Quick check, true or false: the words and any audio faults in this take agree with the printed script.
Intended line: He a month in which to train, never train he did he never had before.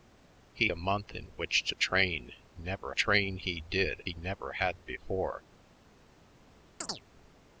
false